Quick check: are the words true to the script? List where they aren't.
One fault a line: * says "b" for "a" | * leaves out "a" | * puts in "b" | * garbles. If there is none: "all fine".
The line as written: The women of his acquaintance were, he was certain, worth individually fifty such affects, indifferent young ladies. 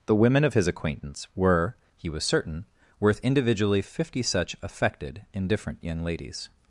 * says "affected" for "affects"